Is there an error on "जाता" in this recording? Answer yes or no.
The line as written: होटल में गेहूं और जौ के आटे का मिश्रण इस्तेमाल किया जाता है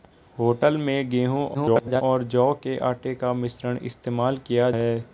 yes